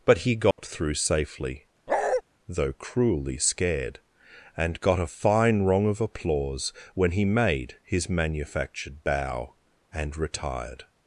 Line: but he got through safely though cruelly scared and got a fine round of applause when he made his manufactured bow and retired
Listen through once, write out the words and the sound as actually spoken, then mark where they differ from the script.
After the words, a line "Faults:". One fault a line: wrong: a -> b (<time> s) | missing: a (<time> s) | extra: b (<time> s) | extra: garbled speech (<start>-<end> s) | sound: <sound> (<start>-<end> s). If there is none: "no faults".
but he got through safely though cruelly scared and got a fine rung of applause when he made his manufactured bow and retired
Faults:
sound: dropout (0.5-0.6 s)
sound: bark (1.9-2.2 s)
wrong: round -> rung (5.6 s)